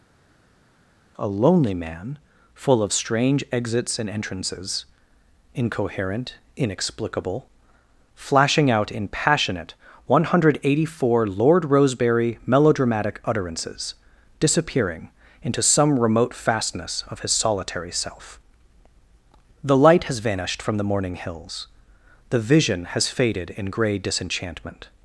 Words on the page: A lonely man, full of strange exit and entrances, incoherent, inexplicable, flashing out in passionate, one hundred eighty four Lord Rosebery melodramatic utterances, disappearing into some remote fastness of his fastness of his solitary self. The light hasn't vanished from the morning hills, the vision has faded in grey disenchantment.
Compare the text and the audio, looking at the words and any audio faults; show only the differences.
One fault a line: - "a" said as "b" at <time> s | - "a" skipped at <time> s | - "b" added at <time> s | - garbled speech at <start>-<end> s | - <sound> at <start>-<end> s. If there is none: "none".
- "exit" said as "exits" at 3.5 s
- "fastness of his" skipped at 17.3 s
- "hasn't" said as "has" at 20.0 s